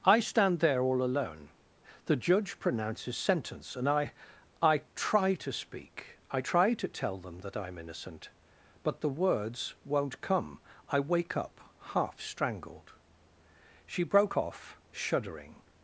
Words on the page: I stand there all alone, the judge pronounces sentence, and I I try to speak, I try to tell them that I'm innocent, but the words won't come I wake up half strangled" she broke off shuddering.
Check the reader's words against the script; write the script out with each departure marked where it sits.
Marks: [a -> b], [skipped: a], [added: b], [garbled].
I stand there all alone, the judge pronounces sentence, and I I try to speak, I try to tell them that I'm innocent, but the words won't come I wake up half strangled" she broke off shuddering.